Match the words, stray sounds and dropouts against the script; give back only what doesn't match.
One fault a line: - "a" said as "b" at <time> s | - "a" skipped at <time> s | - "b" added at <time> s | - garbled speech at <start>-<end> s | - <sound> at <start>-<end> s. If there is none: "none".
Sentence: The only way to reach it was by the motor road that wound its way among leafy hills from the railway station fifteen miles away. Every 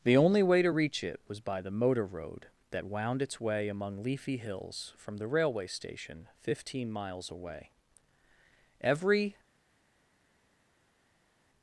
none